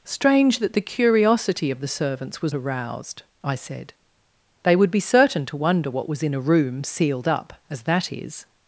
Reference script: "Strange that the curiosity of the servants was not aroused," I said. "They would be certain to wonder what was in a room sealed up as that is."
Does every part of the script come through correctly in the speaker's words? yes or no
no